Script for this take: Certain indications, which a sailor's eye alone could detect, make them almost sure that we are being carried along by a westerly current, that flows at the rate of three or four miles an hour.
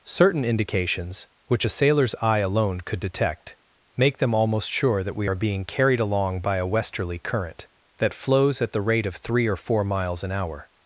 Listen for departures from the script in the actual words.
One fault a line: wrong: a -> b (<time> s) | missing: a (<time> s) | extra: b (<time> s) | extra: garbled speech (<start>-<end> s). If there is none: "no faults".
no faults